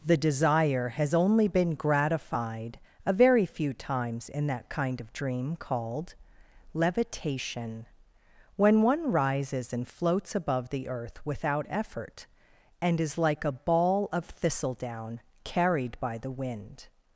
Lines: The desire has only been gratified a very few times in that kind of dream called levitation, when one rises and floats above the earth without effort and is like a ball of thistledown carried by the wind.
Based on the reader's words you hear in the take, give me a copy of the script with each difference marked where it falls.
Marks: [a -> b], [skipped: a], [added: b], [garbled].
The desire has only been gratified a very few times in that kind of dream called levitation, when one rises and floats above the earth without effort and is like a ball of thistledown carried by the wind.